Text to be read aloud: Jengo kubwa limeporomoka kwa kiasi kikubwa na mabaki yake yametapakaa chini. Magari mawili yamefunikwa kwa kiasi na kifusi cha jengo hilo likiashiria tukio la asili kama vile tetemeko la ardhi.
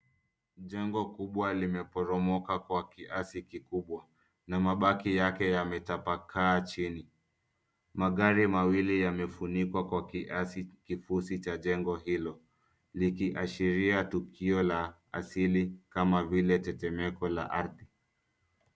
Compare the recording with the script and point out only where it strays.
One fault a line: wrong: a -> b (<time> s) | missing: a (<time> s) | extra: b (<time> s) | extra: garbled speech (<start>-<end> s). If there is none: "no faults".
missing: na (10.7 s)